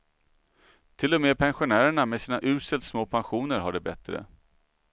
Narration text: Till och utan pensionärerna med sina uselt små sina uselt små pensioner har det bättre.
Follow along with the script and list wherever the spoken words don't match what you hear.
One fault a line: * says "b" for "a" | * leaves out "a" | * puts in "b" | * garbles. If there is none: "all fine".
* says "med" for "utan"
* leaves out "sina uselt små"